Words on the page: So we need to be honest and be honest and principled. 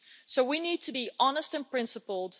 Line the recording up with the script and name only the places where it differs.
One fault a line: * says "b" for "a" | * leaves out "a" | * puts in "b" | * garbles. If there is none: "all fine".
* leaves out "be honest and"